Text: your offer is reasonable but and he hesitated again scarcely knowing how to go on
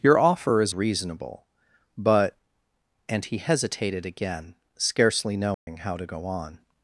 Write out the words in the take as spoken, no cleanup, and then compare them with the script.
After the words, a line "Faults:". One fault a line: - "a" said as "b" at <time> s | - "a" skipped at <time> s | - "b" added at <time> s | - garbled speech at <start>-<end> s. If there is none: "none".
your offer is reasonable but and he hesitated again scarcely knowing how to go on
Faults:
none